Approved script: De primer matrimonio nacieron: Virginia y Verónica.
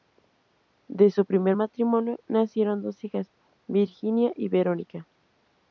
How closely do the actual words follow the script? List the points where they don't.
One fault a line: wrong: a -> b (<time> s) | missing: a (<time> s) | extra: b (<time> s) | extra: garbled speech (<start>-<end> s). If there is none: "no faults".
extra: su (1.1 s)
extra: dos hijas (2.8 s)